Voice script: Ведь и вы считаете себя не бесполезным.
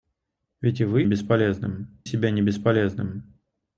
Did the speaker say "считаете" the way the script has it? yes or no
no